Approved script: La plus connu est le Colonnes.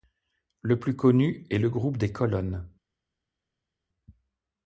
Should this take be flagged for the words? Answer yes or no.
yes